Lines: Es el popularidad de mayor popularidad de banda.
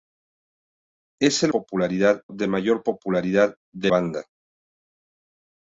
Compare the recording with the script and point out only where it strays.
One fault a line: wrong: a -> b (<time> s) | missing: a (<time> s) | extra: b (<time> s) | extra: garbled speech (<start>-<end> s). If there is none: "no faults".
no faults